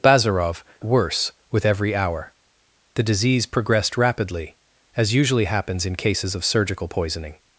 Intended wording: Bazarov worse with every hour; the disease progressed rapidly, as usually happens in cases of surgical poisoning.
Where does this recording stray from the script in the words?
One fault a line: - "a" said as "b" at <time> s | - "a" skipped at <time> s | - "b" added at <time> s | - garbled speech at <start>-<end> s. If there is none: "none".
none